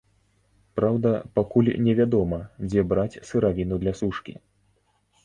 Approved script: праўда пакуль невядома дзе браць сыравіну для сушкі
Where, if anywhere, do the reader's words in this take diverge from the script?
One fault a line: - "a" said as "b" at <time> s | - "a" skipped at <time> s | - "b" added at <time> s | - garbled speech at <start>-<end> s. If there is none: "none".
none